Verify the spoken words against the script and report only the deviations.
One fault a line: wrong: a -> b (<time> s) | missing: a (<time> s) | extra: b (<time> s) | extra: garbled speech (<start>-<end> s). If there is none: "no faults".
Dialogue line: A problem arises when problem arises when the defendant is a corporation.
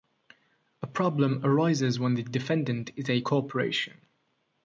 missing: problem arises when (2.1 s)